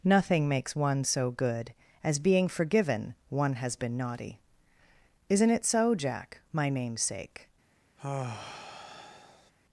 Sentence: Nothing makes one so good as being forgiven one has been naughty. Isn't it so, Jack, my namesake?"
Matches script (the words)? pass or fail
pass